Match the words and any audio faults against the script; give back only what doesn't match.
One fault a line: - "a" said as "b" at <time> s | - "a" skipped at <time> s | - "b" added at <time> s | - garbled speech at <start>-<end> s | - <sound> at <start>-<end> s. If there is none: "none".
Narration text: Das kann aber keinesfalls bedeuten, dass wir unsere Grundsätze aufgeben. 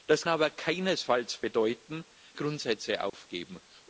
- "kann" skipped at 0.2 s
- "dass wir unsere" skipped at 2.0 s
- dropout at 3.1-3.1 s